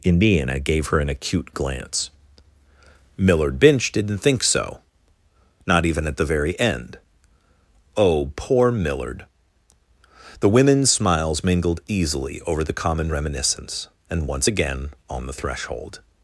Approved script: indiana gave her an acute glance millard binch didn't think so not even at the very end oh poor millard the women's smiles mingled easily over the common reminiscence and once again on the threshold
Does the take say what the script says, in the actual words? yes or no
yes